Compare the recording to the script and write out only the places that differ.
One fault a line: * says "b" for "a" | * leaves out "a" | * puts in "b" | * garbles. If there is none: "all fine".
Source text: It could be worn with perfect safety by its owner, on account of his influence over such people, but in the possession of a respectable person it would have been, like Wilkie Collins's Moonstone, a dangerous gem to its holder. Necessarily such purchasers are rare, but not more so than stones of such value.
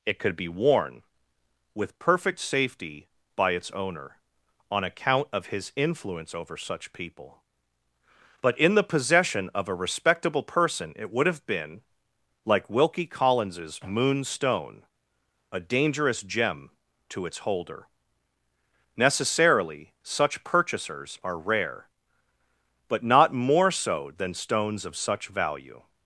all fine